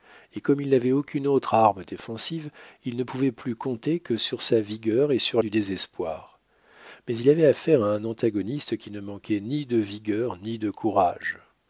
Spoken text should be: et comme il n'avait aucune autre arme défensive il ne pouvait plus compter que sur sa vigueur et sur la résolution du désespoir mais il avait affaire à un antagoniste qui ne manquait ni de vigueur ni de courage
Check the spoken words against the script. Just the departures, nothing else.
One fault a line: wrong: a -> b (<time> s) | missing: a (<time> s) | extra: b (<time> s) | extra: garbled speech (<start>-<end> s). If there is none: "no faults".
missing: la résolution (5.4 s)